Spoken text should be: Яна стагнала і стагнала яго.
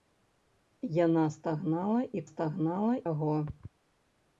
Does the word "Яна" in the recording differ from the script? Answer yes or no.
no